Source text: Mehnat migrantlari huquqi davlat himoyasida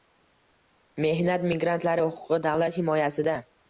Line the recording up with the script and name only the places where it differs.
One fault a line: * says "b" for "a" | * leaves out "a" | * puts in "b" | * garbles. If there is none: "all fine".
all fine